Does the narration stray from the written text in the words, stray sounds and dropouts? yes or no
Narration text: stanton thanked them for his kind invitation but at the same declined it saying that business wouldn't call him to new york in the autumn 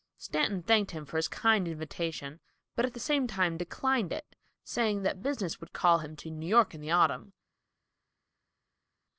yes